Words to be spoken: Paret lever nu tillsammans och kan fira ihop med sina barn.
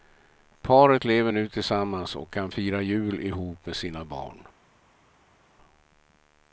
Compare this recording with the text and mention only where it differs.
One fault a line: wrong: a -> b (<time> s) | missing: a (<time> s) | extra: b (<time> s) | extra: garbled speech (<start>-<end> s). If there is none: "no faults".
extra: jul (2.8 s)